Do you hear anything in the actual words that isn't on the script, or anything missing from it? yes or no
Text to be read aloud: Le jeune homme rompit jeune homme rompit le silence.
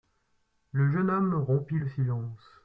yes